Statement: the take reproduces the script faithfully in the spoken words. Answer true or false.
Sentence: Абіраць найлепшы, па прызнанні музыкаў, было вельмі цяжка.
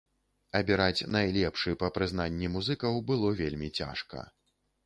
true